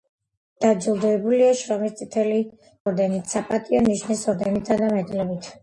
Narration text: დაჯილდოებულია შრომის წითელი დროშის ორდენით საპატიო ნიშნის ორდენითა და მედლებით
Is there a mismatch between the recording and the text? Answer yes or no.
yes